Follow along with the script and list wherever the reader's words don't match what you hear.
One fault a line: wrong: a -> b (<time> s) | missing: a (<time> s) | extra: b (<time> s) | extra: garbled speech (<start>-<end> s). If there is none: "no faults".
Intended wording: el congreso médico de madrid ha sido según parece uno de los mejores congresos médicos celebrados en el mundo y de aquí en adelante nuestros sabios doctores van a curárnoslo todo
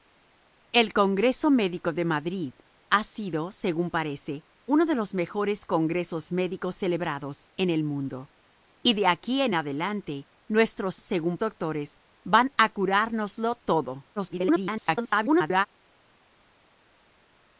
wrong: sabios -> según (11.0 s)
extra: garbled speech (14.2-15.7 s)